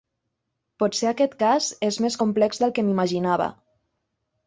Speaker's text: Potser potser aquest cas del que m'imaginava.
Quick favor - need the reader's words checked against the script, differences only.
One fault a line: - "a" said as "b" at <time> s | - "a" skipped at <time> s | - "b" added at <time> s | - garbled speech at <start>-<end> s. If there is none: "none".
- "potser" skipped at 1.1 s
- "és més complex" added at 1.9 s